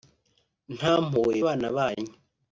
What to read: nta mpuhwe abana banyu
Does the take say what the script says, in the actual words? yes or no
yes